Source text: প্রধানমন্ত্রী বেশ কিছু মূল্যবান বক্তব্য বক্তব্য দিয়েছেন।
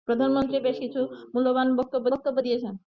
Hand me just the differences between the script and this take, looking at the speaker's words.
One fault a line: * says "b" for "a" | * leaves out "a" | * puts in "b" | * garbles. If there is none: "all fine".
all fine